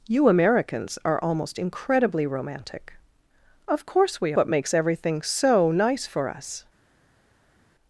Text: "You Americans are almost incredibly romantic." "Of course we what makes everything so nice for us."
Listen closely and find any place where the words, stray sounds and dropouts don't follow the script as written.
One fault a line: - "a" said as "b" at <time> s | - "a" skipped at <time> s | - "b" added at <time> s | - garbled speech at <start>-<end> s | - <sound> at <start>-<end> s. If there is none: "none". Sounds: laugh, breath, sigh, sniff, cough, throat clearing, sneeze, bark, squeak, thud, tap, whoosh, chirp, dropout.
none